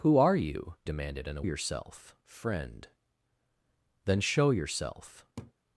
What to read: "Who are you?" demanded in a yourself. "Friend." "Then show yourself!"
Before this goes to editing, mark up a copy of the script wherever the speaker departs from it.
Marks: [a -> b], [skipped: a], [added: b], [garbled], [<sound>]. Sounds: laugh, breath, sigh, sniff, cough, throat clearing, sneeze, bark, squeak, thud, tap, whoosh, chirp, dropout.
"Who are you?" demanded in a yourself. "Friend." "Then show yourself!" [laugh]